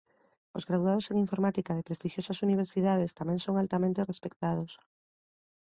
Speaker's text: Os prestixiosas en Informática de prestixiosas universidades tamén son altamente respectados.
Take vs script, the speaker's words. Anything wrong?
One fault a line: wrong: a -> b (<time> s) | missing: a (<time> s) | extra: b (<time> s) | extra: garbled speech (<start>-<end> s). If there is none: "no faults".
wrong: prestixiosas -> graduados (0.7 s)